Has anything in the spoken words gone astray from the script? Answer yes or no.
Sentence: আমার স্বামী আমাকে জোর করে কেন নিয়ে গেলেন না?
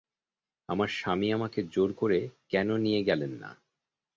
no